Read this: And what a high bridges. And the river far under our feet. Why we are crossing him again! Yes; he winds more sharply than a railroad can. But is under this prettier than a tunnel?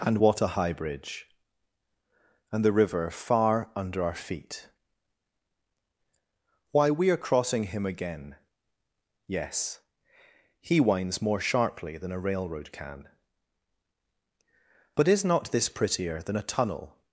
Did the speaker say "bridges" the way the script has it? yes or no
no